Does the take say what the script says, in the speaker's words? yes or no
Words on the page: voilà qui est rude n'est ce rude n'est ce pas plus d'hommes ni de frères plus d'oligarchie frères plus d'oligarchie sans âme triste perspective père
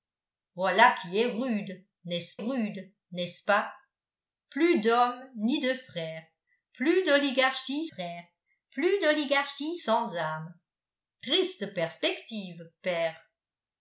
yes